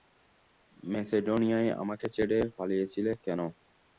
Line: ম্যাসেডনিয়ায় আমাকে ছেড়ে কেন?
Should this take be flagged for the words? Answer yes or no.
yes